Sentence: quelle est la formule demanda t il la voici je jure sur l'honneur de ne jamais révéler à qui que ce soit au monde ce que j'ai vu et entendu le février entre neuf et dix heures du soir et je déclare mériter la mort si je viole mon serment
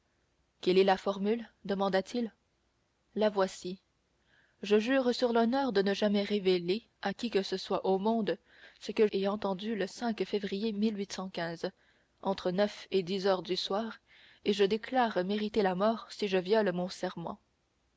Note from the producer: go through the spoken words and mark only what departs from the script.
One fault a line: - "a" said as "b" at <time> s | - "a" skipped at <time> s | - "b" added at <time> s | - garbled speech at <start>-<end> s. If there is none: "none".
- "j'ai vu" skipped at 9.1 s